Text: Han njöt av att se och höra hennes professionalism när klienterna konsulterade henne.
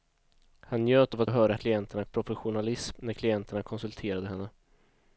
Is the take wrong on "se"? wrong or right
wrong